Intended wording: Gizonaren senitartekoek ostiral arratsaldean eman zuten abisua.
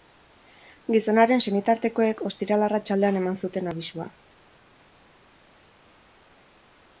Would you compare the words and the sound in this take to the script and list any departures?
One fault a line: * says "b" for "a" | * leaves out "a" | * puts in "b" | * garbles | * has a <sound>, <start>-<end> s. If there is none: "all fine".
all fine